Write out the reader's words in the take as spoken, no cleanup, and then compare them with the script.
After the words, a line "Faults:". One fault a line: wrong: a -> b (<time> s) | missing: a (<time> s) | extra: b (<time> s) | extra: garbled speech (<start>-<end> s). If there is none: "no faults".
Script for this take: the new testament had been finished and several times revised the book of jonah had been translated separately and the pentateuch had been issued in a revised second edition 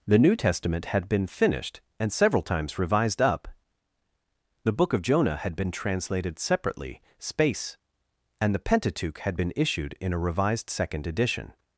the new testament had been finished and several times revised up the book of jonah had been translated separately space and the pentateuch had been issued in a revised second edition
Faults:
extra: up (3.2 s)
extra: space (7.2 s)